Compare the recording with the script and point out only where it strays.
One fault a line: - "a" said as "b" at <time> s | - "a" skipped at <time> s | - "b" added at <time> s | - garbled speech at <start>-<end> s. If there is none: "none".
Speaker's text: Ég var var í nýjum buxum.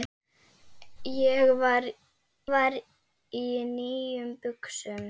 none